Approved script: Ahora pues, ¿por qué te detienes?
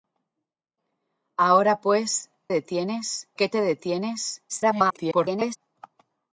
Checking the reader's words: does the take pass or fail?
fail